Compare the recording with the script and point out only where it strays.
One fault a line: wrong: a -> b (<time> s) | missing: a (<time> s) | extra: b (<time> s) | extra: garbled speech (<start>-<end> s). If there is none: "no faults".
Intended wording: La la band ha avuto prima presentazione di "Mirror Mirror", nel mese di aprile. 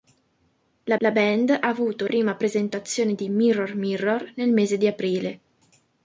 no faults